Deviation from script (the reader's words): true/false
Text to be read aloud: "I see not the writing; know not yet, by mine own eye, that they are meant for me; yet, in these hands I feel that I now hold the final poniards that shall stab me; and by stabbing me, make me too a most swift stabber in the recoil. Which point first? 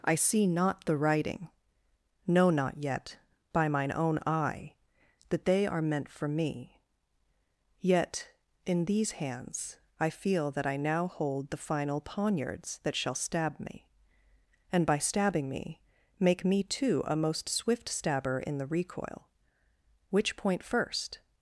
false